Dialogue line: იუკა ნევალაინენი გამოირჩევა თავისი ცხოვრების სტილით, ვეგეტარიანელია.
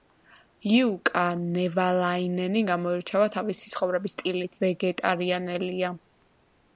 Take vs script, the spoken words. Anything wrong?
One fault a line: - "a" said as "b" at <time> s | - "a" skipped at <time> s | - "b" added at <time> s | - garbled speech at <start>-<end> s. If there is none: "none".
none